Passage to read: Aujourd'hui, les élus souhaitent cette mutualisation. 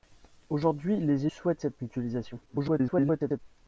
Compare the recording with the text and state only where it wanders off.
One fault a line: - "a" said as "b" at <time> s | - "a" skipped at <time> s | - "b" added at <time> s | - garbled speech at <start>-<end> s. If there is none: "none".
- "élus" skipped at 1.3 s
- garbled speech at 2.4-3.4 s